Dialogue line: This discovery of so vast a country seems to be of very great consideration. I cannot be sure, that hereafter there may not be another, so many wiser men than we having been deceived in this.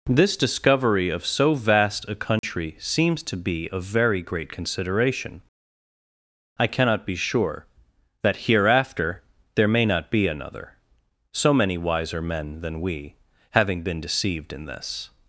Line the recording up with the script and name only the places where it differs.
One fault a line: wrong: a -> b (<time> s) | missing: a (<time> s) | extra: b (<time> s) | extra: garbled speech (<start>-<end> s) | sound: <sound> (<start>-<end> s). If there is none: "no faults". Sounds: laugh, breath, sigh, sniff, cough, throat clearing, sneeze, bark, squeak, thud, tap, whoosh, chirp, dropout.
sound: dropout (2.4-2.4 s)